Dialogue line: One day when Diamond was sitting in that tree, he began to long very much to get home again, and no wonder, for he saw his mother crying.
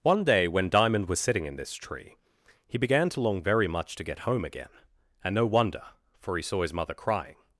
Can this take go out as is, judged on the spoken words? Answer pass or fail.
fail